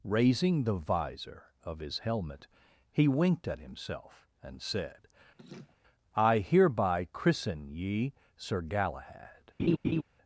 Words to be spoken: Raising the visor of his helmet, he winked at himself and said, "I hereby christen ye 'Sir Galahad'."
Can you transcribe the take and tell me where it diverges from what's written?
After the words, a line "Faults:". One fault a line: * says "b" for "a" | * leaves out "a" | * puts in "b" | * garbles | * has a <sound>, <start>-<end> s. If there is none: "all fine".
Raising the visor of his helmet, he winked at himself and said, "I hereby christen ye 'Sir Galahad'."
Faults:
* has a laugh, 5.4-5.8 s
* has a laugh, 9.6-10.0 s